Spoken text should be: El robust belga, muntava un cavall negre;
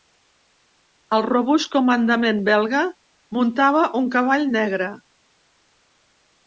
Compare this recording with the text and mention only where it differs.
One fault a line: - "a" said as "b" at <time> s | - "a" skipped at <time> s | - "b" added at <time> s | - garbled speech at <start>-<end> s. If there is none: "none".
- "comandament" added at 1.8 s